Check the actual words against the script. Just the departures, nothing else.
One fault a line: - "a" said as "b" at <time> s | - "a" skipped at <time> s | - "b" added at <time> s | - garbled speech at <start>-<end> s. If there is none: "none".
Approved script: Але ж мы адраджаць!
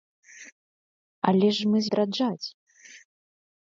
none